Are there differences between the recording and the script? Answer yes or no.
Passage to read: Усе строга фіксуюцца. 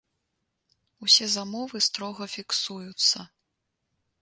yes